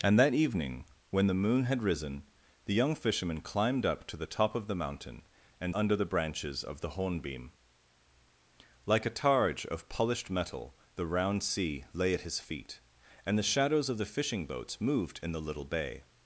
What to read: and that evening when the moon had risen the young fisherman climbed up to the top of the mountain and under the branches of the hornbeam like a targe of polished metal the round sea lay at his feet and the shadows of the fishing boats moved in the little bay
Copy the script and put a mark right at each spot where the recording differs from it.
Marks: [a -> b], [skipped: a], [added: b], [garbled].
and that evening when the moon had risen the young fisherman climbed up to the top of the mountain and under the branches of the hornbeam like a targe of polished metal the round sea lay at his feet and the shadows of the fishing boats moved in the little bay